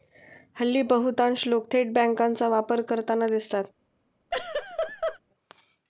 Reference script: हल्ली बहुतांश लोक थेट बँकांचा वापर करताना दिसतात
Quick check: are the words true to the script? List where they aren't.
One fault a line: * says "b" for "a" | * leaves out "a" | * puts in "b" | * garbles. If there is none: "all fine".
all fine